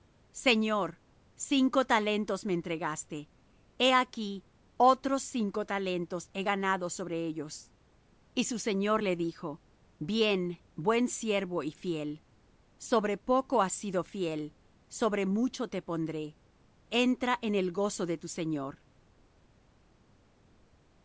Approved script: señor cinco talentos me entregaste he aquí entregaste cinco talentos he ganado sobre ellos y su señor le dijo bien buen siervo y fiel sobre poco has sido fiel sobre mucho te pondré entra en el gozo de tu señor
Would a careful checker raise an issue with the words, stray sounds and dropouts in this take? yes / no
yes